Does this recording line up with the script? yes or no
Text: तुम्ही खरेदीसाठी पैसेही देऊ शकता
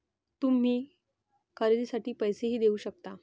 yes